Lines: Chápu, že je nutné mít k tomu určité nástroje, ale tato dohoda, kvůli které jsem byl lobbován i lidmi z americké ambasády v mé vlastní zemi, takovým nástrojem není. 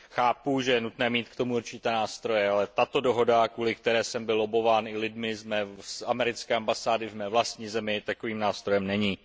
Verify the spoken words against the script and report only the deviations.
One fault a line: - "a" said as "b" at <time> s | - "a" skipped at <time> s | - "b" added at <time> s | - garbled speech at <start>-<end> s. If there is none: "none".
none